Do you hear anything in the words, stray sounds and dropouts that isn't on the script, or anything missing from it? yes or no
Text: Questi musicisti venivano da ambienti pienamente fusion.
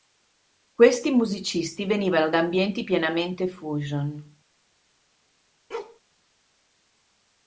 yes